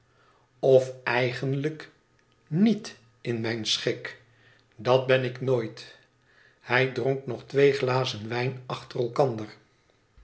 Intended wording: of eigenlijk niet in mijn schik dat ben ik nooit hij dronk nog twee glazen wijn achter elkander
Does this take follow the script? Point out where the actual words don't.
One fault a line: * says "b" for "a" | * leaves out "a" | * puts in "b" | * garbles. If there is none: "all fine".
all fine